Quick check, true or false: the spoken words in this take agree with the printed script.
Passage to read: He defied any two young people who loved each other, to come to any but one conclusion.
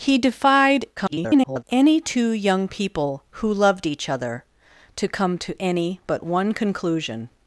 false